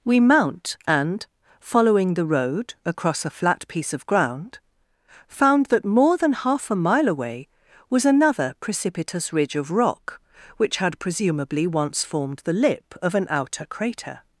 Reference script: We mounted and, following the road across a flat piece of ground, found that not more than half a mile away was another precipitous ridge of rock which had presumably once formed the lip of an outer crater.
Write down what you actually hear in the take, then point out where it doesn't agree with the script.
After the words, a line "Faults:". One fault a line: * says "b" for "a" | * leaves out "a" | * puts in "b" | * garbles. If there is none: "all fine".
We mount and, following the road across a flat piece of ground, found that more than half a mile away was another precipitous ridge of rock which had presumably once formed the lip of an outer crater.
Faults:
* says "mount" for "mounted"
* leaves out "not"